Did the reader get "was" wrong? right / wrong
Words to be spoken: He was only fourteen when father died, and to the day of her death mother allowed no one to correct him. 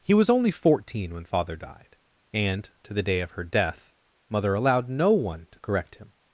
right